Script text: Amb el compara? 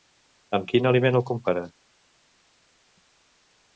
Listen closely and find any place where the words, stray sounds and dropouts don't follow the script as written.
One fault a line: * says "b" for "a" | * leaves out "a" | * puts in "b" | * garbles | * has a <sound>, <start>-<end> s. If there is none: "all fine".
* puts in "quin aliment"